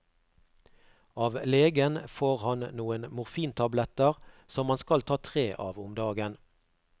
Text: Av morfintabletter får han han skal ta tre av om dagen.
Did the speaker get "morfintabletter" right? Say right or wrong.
wrong